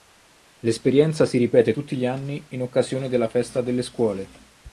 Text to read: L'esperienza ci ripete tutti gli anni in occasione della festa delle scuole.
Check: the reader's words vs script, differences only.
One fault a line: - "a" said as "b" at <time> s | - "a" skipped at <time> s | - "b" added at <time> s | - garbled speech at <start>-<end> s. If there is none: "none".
- "ci" said as "si" at 1.3 s